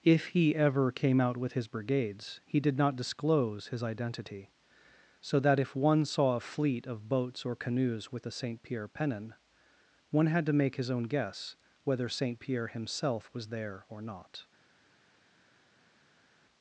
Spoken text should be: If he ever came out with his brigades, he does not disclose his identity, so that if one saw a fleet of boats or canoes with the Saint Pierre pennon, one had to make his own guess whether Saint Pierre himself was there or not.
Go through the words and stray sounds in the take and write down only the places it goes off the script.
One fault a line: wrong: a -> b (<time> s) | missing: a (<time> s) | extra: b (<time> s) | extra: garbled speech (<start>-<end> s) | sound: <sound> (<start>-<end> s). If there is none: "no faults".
wrong: does -> did (2.6 s)